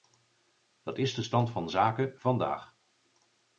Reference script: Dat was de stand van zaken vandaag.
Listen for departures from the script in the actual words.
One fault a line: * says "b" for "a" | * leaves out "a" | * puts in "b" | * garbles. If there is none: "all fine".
* says "is" for "was"